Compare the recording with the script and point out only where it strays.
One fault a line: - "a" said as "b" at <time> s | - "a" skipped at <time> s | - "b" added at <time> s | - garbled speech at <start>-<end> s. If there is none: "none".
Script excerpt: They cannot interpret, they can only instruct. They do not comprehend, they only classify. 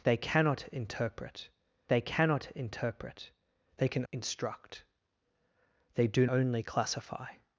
- "cannot interpret they" added at 2.0 s
- "only" skipped at 4.0 s
- "not comprehend they" skipped at 6.3 s